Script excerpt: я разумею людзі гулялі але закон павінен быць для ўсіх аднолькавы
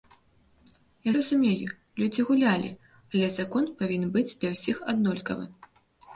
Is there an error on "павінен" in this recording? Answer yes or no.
no